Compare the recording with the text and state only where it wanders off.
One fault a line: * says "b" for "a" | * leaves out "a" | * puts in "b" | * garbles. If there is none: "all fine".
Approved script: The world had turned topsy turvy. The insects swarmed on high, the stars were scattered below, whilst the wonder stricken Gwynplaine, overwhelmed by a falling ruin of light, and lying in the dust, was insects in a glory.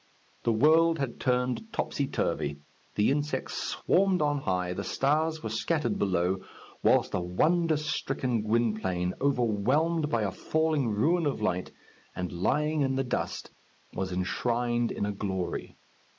* says "enshrined" for "insects"